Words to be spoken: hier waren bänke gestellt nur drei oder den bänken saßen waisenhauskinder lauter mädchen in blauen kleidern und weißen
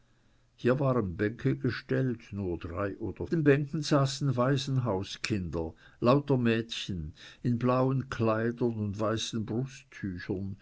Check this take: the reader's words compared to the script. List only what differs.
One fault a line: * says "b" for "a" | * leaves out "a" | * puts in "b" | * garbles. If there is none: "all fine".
all fine